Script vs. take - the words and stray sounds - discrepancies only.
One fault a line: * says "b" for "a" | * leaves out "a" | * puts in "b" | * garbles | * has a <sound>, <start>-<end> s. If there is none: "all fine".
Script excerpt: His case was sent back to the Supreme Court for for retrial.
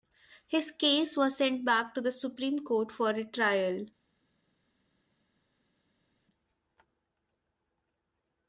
* leaves out "for"